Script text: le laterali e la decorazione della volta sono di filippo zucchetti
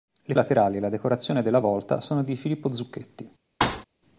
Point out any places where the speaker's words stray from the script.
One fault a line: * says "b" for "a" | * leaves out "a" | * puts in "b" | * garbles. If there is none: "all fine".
all fine